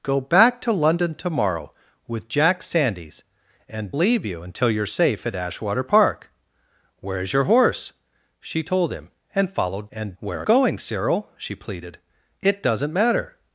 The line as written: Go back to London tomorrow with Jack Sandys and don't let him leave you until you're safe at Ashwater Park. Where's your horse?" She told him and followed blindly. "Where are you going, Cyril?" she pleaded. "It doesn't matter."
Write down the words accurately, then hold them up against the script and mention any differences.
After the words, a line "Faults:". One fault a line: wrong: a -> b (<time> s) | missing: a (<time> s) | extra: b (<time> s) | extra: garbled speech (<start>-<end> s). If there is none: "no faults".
Go back to London tomorrow with Jack Sandys and leave you until you're safe at Ashwater Park. Where's your horse?" She told him and followed and. "Where are going, Cyril?" she pleaded. "It doesn't matter."
Faults:
missing: don't let him (4.0 s)
wrong: blindly -> and (9.9 s)
missing: you (10.5 s)